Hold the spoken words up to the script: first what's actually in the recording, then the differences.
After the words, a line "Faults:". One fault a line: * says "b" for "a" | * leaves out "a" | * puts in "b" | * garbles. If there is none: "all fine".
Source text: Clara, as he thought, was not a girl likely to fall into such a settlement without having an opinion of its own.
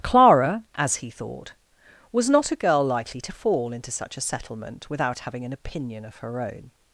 Clara, as he thought, was not a girl likely to fall into such a settlement without having an opinion of her own.
Faults:
* says "her" for "its"